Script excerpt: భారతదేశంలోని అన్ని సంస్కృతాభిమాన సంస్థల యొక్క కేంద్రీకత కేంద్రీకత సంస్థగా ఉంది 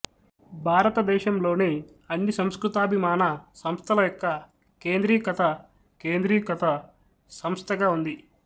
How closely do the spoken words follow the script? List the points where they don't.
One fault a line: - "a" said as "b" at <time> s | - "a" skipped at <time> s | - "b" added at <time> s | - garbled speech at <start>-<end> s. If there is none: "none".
none